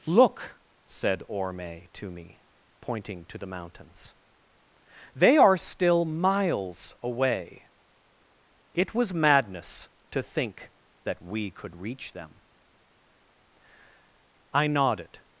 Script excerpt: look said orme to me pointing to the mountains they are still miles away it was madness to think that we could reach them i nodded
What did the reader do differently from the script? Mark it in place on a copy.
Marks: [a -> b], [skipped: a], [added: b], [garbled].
look said orme to me pointing to the mountains they are still miles away it was madness to think that we could reach them i nodded